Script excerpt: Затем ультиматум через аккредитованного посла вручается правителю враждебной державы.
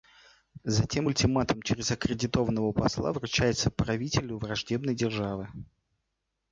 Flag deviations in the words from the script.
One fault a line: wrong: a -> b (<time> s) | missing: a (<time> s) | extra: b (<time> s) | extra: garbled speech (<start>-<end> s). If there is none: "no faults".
no faults